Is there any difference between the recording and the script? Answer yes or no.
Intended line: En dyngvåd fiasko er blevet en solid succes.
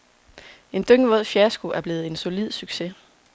no